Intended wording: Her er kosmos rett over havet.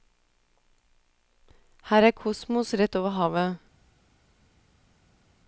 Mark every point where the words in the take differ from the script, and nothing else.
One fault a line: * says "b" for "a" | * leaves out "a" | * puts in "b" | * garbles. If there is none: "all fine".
all fine